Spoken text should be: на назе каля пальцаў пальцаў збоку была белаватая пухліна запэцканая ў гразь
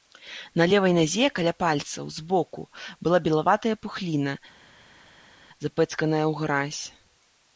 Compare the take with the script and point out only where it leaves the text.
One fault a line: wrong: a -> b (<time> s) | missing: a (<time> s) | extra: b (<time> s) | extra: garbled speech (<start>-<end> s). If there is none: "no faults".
extra: левай (0.7 s)
missing: пальцаў (2.1 s)